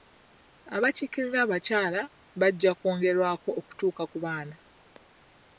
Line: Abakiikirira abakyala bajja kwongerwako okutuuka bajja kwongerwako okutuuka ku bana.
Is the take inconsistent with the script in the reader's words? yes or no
yes